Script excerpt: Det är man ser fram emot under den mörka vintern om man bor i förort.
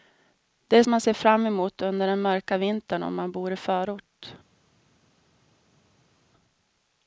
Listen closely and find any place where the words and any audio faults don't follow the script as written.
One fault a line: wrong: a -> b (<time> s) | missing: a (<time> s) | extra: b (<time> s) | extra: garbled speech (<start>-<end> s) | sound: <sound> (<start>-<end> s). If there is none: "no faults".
no faults